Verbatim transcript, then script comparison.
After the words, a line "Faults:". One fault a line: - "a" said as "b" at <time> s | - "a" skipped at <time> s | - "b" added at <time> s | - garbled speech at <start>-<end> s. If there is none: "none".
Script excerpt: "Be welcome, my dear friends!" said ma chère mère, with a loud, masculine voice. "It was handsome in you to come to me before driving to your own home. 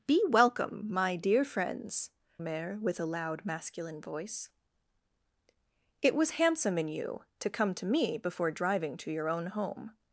"Be welcome, my dear friends!" mère, with a loud, masculine voice. "It was handsome in you to come to me before driving to your own home.
Faults:
- "said ma chère" skipped at 2.1 s